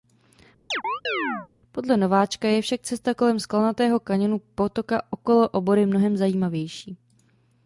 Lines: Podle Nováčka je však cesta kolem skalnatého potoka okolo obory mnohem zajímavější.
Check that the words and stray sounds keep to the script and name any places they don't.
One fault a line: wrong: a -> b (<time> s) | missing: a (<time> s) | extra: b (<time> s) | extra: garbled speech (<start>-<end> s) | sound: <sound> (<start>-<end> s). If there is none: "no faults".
sound: chirp (0.7-1.5 s)
extra: kaňonu (4.0 s)